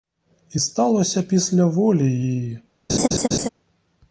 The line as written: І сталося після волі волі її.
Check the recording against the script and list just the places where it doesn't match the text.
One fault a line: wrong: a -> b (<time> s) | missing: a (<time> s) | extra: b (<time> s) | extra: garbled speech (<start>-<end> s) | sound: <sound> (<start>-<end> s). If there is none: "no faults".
missing: волі (2.1 s)
sound: laugh (2.9-3.5 s)